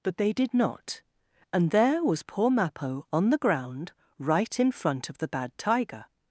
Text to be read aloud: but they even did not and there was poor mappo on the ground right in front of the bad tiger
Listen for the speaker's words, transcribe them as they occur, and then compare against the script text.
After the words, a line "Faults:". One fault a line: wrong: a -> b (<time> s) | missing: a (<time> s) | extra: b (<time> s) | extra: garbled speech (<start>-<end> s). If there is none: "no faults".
but they did not and there was poor mappo on the ground right in front of the bad tiger
Faults:
missing: even (0.3 s)